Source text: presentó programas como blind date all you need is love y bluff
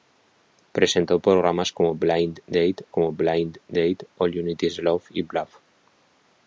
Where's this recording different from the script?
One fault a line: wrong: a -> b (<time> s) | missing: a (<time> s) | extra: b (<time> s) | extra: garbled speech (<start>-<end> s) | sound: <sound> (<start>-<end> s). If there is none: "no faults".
extra: como blind date (2.9 s)